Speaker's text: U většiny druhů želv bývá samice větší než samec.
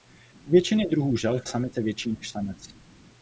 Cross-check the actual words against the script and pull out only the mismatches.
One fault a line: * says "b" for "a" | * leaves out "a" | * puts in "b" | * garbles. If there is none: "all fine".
* leaves out "bývá"